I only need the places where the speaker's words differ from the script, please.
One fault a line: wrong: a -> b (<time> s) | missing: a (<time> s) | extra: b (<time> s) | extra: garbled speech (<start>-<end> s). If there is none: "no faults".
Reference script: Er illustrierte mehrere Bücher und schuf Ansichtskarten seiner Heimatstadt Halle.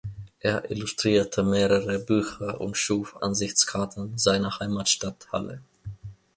no faults